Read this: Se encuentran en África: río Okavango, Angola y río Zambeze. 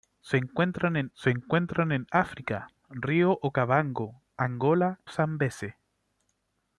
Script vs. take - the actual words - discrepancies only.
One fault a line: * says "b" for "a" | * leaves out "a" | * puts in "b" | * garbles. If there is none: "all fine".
* puts in "se encuentran en"
* leaves out "y río"